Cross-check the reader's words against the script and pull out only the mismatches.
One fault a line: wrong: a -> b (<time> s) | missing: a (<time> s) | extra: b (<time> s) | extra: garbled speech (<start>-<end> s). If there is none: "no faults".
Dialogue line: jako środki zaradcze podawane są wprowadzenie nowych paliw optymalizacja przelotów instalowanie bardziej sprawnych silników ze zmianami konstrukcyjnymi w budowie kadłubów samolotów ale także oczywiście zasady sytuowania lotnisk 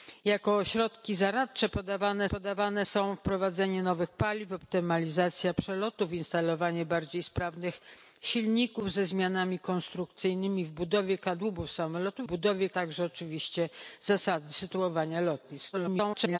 extra: podawane (2.3 s)
wrong: ale -> budowie (12.2 s)
extra: garbled speech (15.7-16.4 s)